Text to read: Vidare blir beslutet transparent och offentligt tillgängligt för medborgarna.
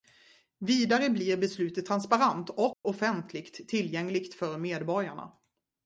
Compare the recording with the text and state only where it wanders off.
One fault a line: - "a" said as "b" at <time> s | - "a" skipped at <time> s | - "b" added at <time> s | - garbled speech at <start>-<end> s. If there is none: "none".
none